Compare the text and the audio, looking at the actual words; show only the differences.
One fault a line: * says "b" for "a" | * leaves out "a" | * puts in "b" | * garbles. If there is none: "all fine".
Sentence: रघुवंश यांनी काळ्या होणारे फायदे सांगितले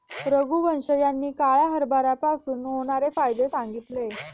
* puts in "हरभऱ्यापासून"